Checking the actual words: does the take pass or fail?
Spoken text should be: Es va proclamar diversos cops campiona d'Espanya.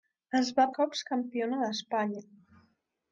fail